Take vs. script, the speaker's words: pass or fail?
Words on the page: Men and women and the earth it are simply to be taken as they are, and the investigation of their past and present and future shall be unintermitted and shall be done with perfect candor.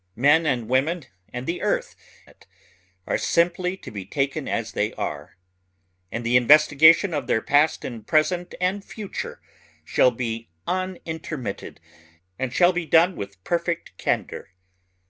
pass